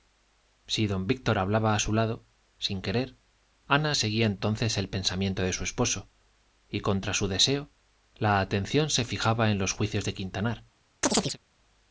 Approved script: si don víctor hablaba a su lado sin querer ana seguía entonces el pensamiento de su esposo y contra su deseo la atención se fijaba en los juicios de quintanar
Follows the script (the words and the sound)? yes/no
no